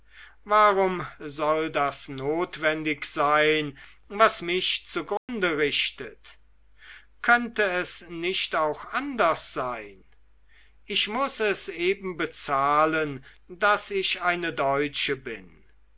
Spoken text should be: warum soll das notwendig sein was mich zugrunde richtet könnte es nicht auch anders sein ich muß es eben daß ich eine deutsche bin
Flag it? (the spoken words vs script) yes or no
yes